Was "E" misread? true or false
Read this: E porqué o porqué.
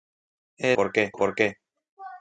false